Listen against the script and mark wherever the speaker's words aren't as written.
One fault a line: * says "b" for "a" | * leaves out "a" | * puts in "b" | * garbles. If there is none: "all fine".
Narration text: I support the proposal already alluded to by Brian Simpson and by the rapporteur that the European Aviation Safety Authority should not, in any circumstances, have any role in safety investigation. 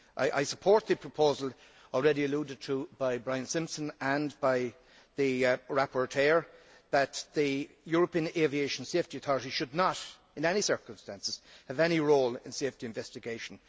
all fine